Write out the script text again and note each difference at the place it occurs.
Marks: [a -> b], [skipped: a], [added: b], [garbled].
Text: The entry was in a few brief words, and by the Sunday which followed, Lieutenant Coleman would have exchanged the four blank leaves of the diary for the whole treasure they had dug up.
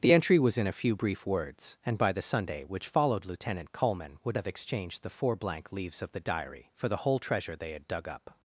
The entry was in a few brief words, and by the Sunday which followed, Lieutenant Coleman would have exchanged the four blank leaves of the diary for the whole treasure they had dug up.